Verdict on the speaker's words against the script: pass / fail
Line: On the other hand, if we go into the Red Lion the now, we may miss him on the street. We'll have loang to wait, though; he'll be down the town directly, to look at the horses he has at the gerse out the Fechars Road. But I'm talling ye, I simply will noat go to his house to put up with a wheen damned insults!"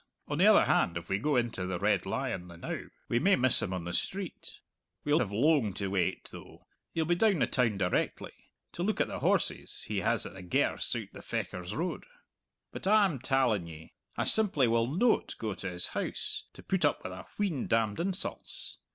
pass